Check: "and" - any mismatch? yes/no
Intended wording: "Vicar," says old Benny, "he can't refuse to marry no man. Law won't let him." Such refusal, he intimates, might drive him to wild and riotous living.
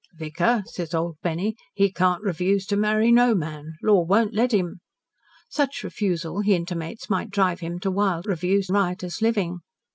yes